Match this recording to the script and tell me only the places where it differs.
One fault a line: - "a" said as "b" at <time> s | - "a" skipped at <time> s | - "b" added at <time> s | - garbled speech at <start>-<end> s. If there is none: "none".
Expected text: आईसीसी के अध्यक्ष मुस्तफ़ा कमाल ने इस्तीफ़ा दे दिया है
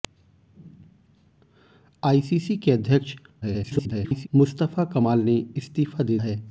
- garbled speech at 3.4-4.3 s
- "दिया" skipped at 6.2 s